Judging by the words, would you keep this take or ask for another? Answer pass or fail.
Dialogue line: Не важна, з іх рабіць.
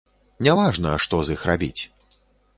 fail